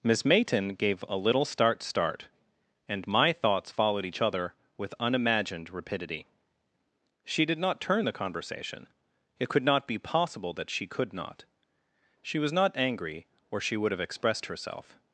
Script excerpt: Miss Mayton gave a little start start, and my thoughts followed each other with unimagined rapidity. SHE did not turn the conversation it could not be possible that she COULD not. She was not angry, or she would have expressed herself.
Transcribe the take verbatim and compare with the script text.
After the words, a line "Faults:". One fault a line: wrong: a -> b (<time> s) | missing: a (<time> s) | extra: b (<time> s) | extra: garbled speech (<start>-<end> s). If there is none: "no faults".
Miss Mayton gave a little start start, and my thoughts followed each other with unimagined rapidity. SHE did not turn the conversation it could not be possible that she COULD not. She was not angry, or she would have expressed herself.
Faults:
no faults